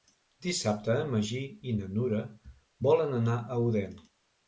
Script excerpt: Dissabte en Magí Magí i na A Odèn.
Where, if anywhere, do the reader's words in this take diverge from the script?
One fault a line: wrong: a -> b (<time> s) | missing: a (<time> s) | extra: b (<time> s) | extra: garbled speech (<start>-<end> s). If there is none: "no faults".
missing: Magí (1.4 s)
extra: Nura volen anar (2.0 s)